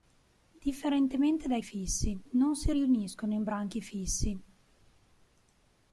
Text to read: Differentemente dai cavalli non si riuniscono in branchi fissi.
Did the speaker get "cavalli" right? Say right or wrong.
wrong